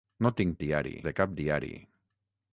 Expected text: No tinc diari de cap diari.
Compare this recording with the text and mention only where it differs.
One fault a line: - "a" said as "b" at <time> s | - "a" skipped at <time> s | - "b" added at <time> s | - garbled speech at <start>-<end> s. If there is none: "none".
none